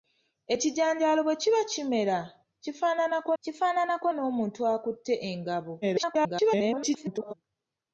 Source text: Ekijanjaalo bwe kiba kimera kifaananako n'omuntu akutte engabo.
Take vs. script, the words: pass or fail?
fail